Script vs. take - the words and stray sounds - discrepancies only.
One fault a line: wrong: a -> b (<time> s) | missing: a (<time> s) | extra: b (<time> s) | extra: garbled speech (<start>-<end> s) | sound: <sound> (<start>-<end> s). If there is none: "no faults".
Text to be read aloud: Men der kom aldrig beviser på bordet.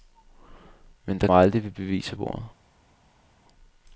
missing: kom (1.3 s)
missing: på (2.2 s)